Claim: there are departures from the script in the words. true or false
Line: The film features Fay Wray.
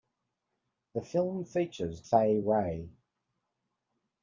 false